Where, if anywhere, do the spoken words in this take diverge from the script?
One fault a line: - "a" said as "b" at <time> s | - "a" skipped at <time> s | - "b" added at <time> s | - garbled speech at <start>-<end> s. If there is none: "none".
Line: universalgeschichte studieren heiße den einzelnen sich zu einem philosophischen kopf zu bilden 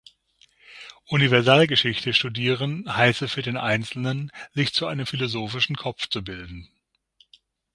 - "für" added at 3.3 s